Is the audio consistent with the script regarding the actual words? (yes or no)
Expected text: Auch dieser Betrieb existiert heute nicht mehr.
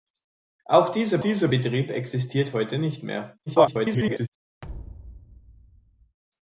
no